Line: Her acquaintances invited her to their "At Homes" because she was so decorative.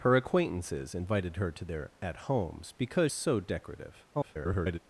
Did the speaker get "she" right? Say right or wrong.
wrong